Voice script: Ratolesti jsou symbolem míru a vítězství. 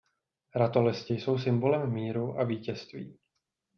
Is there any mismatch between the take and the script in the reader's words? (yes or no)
no